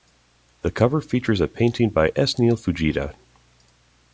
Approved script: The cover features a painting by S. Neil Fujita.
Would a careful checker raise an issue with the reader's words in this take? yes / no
no